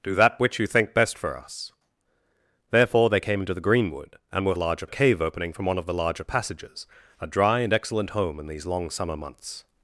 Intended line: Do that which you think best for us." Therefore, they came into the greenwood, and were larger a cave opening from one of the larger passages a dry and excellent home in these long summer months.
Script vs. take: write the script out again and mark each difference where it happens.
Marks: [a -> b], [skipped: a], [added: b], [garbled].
Do that which you think best for us." Therefore, they came into the greenwood, and were larger a cave opening from one of the larger passages a dry and excellent home in these long summer months.